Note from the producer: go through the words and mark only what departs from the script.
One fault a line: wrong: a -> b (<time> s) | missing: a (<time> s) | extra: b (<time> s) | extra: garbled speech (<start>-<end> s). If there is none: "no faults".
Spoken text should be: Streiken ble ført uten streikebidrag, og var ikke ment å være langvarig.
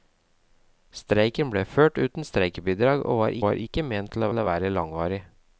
extra: var (3.4 s)
extra: å (4.3 s)